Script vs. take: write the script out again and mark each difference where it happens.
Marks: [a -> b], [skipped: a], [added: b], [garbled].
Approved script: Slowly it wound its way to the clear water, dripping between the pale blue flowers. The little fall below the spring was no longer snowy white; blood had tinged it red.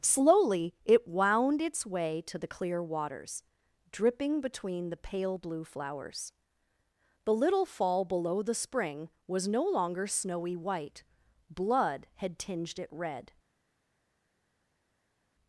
Slowly it wound its way to the clear [water, -> waters] dripping between the pale blue flowers. The little fall below the spring was no longer snowy white; blood had tinged it red.